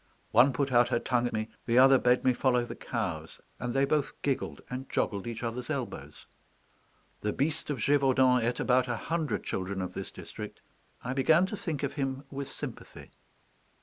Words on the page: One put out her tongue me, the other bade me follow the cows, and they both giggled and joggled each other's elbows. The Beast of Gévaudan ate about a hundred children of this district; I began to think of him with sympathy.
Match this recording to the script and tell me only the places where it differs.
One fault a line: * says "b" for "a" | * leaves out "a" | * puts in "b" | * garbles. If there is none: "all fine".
all fine